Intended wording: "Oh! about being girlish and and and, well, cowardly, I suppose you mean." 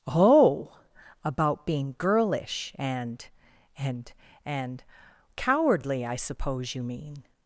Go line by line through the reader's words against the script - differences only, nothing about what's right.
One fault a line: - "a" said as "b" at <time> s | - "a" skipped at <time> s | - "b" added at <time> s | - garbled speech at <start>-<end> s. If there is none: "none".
- "well" skipped at 4.8 s